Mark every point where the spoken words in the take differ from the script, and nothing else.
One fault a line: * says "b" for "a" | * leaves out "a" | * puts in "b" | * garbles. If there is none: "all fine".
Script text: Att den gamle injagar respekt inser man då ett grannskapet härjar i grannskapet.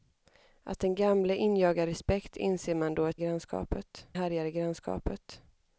all fine